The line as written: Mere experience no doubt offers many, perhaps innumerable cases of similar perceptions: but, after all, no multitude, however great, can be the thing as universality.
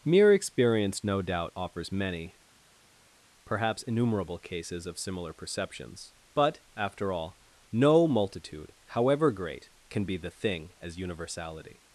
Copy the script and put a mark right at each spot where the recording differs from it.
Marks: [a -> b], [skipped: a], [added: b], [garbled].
Mere experience no doubt offers many, perhaps innumerable cases of similar perceptions: but, after all, no multitude, however great, can be the thing as universality.